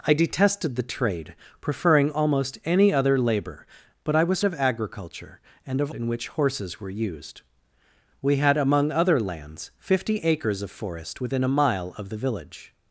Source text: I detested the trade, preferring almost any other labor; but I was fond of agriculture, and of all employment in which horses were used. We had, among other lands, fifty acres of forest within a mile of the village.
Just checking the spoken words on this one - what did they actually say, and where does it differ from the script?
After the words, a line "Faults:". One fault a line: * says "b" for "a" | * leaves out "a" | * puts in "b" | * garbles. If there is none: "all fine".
I detested the trade, preferring almost any other labor; but I was of agriculture, and of in which horses were used. We had, among other lands, fifty acres of forest within a mile of the village.
Faults:
* leaves out "fond"
* leaves out "all employment"